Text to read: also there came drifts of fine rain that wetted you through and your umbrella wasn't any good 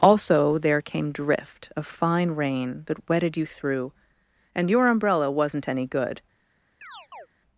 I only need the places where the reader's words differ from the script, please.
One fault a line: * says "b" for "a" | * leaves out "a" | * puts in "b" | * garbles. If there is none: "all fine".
* says "drift" for "drifts"